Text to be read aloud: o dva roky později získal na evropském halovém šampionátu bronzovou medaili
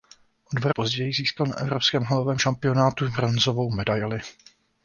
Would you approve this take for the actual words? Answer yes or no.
no